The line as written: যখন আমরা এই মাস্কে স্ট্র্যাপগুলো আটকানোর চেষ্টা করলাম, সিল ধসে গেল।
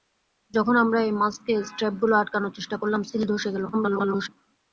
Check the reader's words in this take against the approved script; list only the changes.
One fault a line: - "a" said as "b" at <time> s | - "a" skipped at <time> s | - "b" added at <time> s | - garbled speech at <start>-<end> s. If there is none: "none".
- garbled speech at 3.7-4.3 s